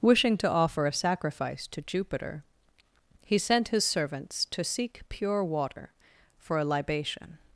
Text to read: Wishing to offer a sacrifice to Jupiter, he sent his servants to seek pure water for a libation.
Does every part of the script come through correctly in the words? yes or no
yes